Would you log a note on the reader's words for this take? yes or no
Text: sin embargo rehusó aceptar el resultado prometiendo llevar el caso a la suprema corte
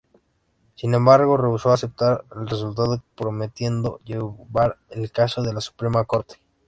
no